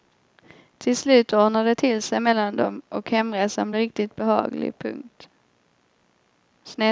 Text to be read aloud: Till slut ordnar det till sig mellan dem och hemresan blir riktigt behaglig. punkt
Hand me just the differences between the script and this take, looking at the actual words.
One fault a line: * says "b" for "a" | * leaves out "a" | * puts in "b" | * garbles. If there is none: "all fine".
all fine